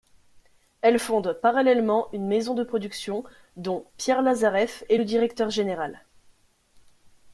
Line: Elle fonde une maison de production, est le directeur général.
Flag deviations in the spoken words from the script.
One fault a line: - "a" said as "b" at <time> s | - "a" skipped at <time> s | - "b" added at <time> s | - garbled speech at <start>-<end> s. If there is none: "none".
- "parallèlement" added at 1.4 s
- "dont Pierre Lazareff" added at 3.6 s